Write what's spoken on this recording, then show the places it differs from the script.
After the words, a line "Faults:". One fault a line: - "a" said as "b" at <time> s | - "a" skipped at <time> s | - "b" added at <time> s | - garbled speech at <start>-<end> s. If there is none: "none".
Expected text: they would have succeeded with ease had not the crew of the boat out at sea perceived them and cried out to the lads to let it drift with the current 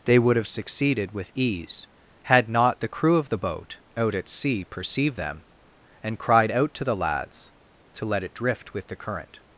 they would have succeeded with ease had not the crew of the boat out at sea perceived them and cried out to the lads to let it drift with the current
Faults:
none